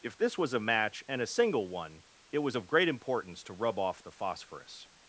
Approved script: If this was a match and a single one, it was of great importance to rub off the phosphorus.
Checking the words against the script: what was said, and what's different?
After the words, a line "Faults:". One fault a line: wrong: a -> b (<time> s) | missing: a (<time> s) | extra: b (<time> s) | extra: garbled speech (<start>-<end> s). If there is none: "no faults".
If this was a match and a single one, it was of great importance to rub off the phosphorus.
Faults:
no faults